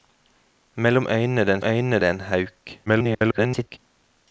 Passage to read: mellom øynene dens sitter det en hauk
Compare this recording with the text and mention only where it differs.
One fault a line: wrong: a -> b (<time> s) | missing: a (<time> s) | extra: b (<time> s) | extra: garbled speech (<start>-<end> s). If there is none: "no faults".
wrong: sitter -> øynene (1.6 s)
extra: garbled speech (2.9-3.8 s)